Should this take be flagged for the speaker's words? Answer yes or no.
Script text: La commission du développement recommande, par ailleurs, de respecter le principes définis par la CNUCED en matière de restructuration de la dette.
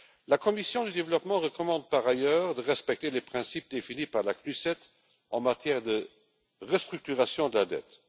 yes